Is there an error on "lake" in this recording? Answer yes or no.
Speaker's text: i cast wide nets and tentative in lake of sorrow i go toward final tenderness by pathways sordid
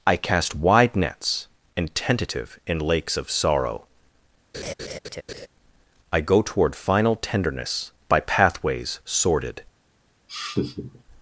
yes